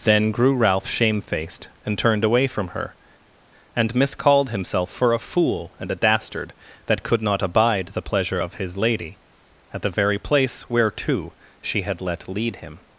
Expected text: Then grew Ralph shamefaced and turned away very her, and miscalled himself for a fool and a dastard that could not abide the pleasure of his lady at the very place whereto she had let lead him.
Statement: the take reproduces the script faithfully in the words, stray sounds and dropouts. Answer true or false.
false